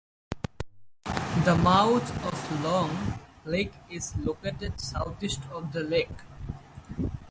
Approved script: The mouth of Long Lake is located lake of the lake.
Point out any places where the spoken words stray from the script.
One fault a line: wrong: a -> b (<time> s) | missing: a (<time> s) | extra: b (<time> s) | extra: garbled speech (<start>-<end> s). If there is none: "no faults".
wrong: lake -> southeast (4.8 s)